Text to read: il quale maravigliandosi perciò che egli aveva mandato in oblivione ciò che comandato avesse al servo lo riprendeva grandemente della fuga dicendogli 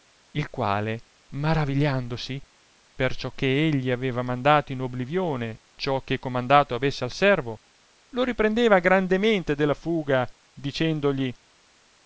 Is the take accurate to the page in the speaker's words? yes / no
yes